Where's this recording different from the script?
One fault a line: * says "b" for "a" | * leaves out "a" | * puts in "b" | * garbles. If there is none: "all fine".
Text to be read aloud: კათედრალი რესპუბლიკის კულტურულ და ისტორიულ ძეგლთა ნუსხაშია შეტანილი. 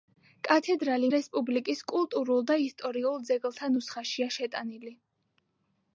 all fine